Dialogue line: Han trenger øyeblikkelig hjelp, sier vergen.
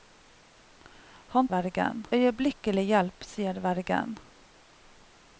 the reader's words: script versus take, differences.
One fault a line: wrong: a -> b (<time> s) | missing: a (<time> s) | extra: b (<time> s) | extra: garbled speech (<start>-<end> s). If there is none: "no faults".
wrong: trenger -> vergen (1.5 s)